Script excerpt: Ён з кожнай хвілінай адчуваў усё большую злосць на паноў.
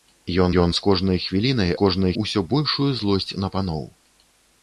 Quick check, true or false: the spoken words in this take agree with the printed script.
false